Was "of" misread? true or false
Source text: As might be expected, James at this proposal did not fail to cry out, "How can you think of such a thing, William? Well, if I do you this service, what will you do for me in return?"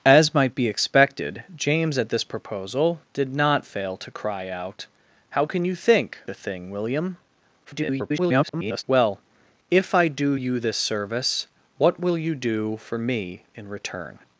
true